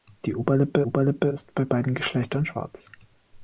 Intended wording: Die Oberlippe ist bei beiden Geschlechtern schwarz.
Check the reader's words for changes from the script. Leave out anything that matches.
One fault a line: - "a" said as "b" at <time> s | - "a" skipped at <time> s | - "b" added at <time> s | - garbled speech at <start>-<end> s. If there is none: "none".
- "Oberlippe" added at 0.8 s